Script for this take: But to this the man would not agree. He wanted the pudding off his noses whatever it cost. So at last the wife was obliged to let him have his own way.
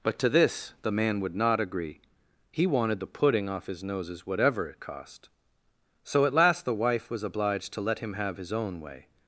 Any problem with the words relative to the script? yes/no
no